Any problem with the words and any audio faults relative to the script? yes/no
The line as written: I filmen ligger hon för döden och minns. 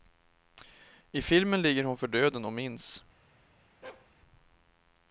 yes